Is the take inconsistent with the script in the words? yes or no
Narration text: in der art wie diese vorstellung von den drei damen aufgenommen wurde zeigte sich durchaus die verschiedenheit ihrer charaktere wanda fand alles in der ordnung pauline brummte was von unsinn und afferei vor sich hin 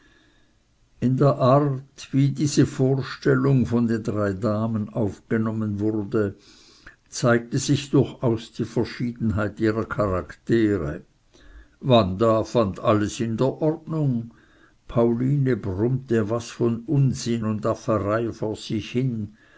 no